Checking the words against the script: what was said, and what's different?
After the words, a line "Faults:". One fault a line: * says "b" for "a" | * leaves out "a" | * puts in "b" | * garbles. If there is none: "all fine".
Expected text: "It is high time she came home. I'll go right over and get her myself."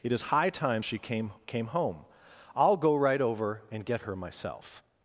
"It is high time she came came home. I'll go right over and get her myself."
Faults:
* puts in "came"